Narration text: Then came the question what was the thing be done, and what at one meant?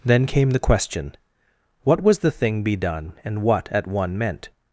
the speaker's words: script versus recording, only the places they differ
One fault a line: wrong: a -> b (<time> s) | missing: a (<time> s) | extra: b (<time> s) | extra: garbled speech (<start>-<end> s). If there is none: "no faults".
no faults